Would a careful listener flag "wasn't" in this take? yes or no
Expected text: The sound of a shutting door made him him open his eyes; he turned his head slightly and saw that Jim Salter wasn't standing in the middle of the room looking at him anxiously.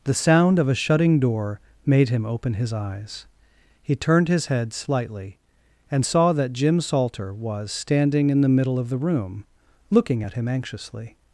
yes